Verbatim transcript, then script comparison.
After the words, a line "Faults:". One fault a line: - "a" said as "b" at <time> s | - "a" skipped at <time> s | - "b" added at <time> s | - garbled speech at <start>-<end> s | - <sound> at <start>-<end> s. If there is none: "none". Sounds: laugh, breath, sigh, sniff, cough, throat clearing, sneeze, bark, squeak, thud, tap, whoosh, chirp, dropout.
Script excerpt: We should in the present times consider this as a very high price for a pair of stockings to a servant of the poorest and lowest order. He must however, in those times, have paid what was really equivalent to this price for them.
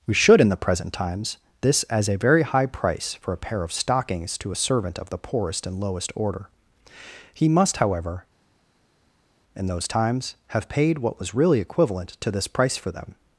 We should in the present times this as a very high price for a pair of stockings to a servant of the poorest and lowest order. He must however, in those times, have paid what was really equivalent to this price for them.
Faults:
- "consider" skipped at 1.4 s